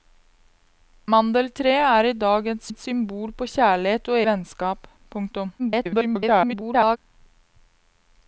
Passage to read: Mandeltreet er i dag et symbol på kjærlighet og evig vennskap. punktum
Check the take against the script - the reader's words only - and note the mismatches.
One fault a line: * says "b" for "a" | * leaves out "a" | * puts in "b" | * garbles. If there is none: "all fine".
* puts in "et"
* leaves out "evig"
* garbles